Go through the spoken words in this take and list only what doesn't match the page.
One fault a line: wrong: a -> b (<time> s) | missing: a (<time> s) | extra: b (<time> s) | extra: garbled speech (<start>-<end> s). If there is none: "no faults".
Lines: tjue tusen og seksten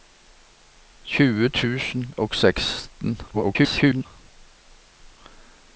extra: garbled speech (3.3-4.1 s)